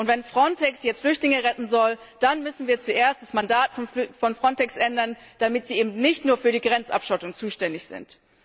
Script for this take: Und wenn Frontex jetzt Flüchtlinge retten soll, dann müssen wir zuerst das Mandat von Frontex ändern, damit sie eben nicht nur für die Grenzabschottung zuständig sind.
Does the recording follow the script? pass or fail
pass